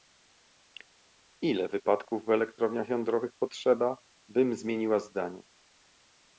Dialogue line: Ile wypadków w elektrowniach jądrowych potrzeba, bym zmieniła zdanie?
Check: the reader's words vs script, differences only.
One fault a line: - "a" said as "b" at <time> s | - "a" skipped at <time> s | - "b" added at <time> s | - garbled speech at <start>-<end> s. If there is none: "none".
none